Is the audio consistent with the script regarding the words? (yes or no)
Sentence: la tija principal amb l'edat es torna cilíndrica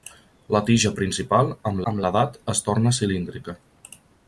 no